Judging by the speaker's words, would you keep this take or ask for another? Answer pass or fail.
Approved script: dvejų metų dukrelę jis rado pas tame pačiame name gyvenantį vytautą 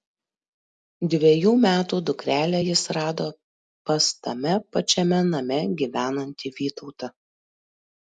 pass